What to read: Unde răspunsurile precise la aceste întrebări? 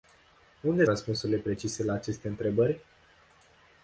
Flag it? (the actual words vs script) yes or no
no